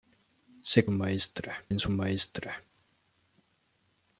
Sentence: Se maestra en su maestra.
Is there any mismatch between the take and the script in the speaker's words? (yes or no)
no